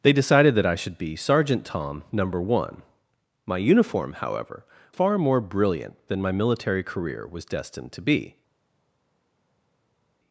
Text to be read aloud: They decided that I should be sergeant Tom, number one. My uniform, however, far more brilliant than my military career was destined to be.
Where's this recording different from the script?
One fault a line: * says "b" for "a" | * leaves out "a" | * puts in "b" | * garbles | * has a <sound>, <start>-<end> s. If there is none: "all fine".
all fine